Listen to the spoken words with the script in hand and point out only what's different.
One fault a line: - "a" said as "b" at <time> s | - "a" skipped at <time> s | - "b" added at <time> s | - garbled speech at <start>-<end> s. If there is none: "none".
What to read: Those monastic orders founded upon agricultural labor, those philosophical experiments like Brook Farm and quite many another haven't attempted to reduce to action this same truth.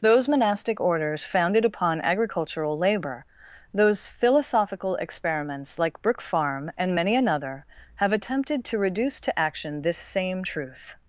- "quite" skipped at 7.0 s
- "haven't" said as "have" at 8.0 s